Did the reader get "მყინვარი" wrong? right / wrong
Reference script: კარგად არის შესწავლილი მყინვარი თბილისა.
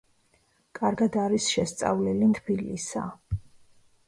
wrong